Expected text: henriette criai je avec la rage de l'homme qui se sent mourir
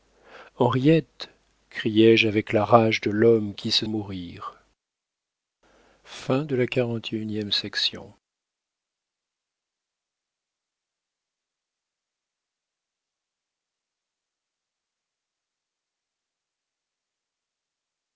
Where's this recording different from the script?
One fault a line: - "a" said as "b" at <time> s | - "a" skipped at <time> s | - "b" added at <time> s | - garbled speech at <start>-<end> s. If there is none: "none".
- "sent" skipped at 3.9 s